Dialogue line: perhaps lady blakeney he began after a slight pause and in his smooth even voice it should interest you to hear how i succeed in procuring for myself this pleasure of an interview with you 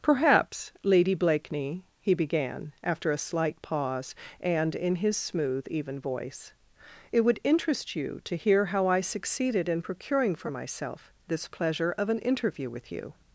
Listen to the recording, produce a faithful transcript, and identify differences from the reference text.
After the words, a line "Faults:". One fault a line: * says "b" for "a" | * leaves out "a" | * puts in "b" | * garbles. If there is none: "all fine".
perhaps lady blakeney he began after a slight pause and in his smooth even voice it would interest you to hear how i succeeded in procuring for myself this pleasure of an interview with you
Faults:
* says "would" for "should"
* says "succeeded" for "succeed"